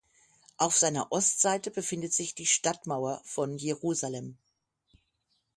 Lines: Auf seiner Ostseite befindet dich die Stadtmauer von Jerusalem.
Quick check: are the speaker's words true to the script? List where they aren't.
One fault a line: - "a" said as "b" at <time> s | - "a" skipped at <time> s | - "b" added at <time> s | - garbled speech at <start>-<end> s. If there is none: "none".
- "dich" said as "sich" at 2.1 s